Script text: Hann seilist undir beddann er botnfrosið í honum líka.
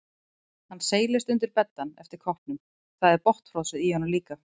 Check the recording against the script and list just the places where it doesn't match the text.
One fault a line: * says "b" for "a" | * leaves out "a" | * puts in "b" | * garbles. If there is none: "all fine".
* puts in "eftir koppnum það"